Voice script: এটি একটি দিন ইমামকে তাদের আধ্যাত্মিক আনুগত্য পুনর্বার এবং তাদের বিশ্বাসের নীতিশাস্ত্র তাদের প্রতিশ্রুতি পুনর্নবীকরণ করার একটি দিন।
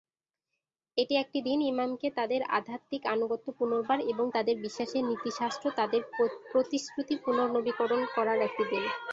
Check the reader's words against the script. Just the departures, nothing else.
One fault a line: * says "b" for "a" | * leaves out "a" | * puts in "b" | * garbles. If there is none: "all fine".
all fine